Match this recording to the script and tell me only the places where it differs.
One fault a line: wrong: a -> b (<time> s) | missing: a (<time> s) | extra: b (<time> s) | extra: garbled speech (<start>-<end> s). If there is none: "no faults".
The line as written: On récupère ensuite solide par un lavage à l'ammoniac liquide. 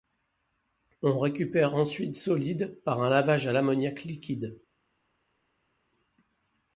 no faults